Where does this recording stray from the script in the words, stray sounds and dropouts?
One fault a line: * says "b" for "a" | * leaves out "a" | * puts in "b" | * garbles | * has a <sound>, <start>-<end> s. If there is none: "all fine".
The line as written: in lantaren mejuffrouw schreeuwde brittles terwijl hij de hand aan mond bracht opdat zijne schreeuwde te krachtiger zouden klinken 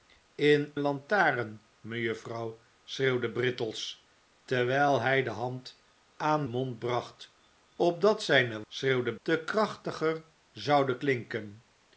all fine